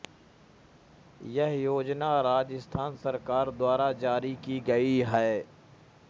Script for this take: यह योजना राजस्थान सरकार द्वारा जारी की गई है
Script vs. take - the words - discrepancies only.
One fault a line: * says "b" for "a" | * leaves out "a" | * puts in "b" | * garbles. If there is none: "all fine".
all fine